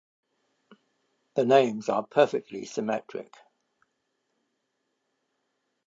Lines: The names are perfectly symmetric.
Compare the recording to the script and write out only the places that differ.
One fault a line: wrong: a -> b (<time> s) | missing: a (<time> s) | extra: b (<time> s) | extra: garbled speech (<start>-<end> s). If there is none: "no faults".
no faults